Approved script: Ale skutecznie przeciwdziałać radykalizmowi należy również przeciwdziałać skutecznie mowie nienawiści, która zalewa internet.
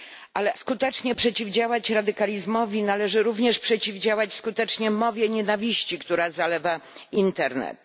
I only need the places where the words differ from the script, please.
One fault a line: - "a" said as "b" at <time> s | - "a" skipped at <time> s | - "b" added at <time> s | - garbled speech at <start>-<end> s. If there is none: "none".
none